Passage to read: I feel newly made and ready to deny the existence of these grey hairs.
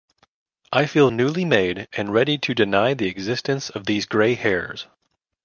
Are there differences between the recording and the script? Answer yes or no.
no